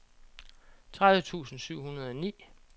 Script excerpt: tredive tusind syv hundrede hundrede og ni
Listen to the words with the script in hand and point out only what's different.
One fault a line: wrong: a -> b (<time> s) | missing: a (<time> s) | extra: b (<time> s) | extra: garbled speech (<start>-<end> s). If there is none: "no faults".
missing: hundrede (2.1 s)